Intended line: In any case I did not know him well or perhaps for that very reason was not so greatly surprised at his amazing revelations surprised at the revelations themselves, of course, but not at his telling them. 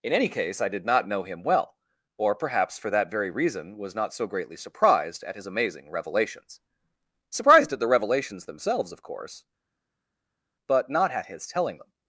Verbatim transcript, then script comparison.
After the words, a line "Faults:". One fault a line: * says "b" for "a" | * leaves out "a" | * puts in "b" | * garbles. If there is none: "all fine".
In any case I did not know him well or perhaps for that very reason was not so greatly surprised at his amazing revelations surprised at the revelations themselves, of course, but not at his telling them.
Faults:
all fine